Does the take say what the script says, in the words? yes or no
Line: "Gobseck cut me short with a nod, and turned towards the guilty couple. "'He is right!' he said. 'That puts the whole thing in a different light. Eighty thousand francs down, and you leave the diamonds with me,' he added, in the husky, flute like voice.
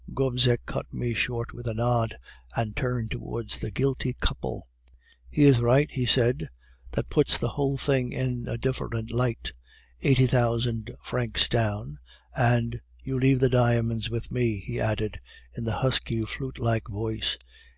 yes